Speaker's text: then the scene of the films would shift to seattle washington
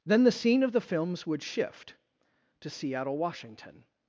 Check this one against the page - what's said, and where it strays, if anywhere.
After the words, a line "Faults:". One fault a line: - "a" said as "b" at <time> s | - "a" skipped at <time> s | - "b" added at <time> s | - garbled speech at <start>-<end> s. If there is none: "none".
then the scene of the films would shift to seattle washington
Faults:
none